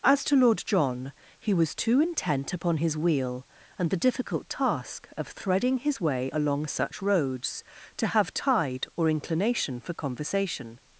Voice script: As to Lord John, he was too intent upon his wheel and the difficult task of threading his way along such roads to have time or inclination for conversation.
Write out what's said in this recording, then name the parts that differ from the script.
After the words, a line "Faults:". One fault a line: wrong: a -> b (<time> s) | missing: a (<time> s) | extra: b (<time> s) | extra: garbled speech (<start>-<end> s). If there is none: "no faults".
As to Lord John, he was too intent upon his wheel and the difficult task of threading his way along such roads to have tide or inclination for conversation.
Faults:
wrong: time -> tide (8.3 s)